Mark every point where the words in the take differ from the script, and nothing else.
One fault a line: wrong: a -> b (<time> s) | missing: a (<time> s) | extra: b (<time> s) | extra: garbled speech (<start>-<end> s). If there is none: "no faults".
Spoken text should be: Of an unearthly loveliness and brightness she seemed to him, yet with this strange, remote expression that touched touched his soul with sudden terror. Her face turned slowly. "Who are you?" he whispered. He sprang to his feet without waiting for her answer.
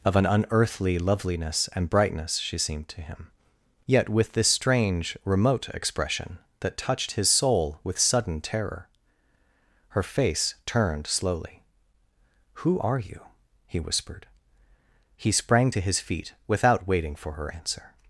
missing: touched (7.1 s)